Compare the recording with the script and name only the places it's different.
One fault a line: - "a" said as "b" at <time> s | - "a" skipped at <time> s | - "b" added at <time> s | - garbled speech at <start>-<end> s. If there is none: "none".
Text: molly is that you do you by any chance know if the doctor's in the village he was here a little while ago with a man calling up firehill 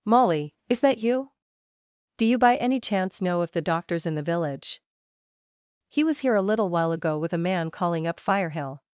none